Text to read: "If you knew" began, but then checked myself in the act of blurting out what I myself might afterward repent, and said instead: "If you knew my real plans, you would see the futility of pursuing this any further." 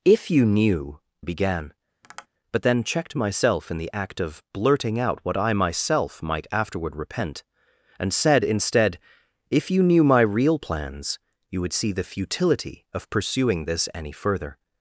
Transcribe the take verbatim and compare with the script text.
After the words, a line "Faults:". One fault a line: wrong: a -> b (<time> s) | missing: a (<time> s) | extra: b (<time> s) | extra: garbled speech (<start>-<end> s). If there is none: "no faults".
"If you knew" began, but then checked myself in the act of blurting out what I myself might afterward repent, and said instead: "If you knew my real plans, you would see the futility of pursuing this any further."
Faults:
no faults